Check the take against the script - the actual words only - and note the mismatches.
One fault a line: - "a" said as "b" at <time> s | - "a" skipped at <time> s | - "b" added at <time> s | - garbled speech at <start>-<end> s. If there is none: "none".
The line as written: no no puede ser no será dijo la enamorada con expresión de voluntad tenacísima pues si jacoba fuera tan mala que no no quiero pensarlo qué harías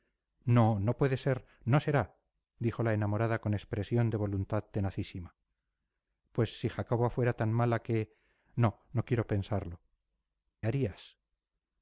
- "qué" skipped at 9.8 s